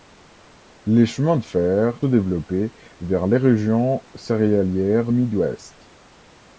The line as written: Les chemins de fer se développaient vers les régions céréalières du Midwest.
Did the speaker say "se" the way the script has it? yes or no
no